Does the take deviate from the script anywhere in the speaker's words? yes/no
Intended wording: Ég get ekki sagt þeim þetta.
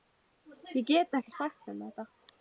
no